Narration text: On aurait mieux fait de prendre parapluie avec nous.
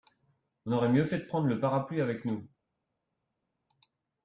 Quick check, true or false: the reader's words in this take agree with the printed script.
false